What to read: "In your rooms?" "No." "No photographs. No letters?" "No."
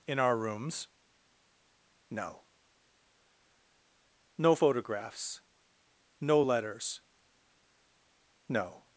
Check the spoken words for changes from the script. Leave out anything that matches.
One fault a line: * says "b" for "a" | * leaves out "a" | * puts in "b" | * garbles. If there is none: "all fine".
* says "our" for "your"